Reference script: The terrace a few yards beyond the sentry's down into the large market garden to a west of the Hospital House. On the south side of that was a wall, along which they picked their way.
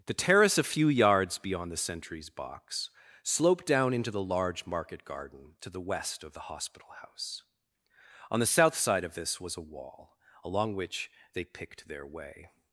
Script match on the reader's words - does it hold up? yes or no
no